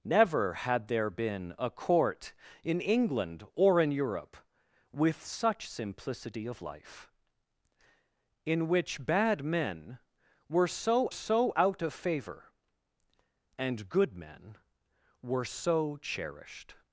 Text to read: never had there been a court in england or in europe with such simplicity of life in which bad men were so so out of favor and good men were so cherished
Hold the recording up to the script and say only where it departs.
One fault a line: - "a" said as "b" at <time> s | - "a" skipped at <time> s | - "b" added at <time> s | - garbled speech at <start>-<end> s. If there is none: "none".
none